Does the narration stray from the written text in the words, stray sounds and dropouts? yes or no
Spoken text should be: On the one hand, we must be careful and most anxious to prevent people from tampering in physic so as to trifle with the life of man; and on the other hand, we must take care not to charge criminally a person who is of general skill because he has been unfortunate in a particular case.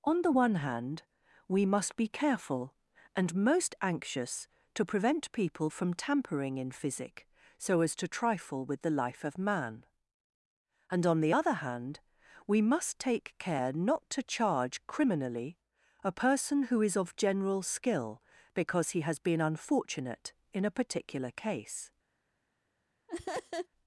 yes